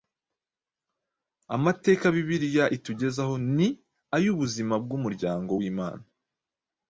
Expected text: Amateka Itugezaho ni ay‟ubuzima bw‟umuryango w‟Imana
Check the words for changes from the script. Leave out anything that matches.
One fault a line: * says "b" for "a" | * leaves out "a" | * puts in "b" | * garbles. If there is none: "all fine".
* puts in "Bibiliya"